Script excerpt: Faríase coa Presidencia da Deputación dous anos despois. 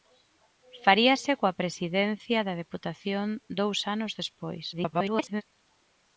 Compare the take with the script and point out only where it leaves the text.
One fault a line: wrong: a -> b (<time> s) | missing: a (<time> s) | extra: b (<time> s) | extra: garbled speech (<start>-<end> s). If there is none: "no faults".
extra: garbled speech (4.7-5.4 s)